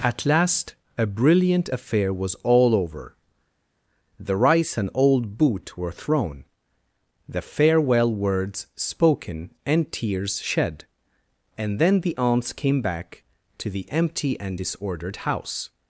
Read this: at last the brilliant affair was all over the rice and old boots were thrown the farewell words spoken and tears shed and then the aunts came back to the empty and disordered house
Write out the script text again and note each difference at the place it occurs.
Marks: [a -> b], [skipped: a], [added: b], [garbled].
at last [the -> a] brilliant affair was all over the rice and old [boots -> boot] were thrown the farewell words spoken and tears shed and then the aunts came back to the empty and disordered house